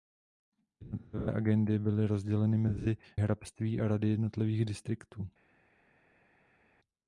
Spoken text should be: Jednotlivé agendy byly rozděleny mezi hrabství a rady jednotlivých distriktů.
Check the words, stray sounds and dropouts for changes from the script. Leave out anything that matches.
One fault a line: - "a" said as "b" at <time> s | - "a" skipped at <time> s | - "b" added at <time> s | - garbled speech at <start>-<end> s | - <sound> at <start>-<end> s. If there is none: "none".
none